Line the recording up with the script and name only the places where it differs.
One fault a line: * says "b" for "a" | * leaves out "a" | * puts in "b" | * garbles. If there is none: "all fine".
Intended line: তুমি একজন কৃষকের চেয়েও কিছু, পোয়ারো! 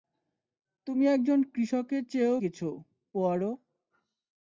all fine